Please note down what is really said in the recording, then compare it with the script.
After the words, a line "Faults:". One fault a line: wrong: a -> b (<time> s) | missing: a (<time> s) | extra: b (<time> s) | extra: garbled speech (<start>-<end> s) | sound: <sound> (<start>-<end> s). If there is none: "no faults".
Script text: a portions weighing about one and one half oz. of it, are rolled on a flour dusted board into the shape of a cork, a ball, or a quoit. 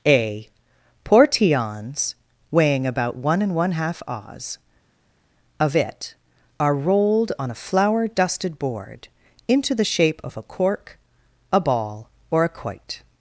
a portions weighing about one and one half oz. of it, are rolled on a flour dusted board into the shape of a cork, a ball, or a quoit.
Faults:
no faults